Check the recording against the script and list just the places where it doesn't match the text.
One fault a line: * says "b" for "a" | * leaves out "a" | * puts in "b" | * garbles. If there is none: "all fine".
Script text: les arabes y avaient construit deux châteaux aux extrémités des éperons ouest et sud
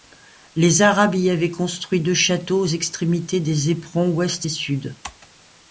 all fine